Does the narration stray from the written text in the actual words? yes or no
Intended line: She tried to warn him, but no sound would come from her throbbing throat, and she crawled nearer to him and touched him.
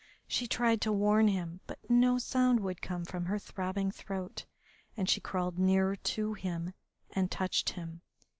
no